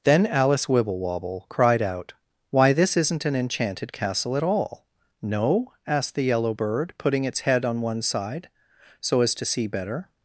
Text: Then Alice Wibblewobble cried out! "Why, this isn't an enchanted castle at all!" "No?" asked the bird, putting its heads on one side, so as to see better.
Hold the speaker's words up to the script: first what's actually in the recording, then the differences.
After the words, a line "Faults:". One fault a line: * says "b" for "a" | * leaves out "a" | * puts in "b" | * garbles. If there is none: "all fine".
Then Alice Wibblewobble cried out! "Why, this isn't an enchanted castle at all!" "No?" asked the yellow bird, putting its head on one side, so as to see better.
Faults:
* puts in "yellow"
* says "head" for "heads"